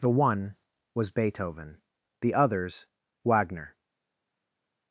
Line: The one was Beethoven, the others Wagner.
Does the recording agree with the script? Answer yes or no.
yes